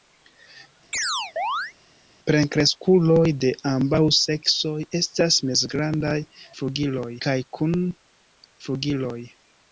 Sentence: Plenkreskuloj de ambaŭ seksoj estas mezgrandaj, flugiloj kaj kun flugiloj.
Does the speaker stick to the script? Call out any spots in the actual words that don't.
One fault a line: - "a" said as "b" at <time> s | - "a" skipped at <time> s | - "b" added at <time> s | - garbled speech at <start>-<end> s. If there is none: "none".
none